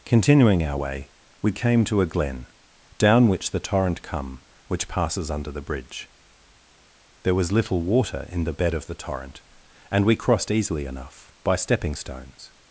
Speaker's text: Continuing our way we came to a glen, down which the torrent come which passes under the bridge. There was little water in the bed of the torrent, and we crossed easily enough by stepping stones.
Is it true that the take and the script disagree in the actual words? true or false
false